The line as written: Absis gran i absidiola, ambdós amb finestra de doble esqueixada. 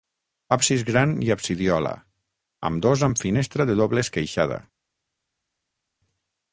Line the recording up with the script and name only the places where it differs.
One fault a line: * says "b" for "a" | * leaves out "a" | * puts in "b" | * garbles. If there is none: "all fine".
all fine